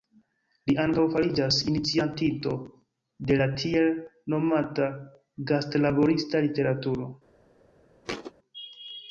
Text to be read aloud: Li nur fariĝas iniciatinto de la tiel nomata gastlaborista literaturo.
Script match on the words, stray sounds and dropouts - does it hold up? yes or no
no